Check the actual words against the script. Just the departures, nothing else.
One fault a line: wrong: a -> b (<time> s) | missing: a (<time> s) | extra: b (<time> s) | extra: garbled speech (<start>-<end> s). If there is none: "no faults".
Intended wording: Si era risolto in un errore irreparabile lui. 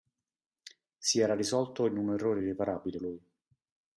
no faults